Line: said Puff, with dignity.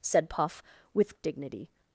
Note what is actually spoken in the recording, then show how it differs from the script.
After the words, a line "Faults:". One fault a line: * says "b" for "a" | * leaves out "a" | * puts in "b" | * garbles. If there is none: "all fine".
said Puff, with dignity.
Faults:
all fine